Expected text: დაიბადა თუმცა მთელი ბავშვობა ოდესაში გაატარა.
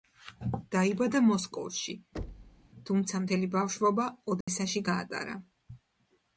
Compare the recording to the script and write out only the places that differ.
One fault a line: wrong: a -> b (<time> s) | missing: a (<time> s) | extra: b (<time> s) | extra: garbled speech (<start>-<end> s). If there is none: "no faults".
extra: მოსკოვში (1.2 s)